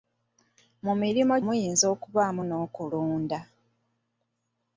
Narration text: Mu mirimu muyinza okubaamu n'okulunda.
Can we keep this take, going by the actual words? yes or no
yes